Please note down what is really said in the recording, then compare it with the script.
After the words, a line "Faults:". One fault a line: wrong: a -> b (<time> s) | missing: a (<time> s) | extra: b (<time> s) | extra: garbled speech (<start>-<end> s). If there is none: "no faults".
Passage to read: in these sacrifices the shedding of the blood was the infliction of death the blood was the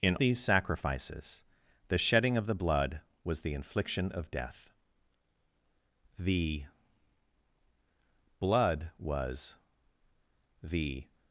in these sacrifices the shedding of the blood was the infliction of death the blood was the
Faults:
no faults